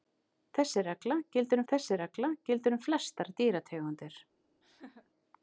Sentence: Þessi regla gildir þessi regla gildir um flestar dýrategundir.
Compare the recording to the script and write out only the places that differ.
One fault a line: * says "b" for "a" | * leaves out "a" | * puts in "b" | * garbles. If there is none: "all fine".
all fine